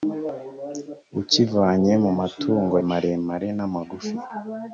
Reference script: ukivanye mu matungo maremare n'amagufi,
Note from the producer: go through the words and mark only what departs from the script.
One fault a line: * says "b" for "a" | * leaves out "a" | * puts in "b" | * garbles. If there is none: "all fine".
all fine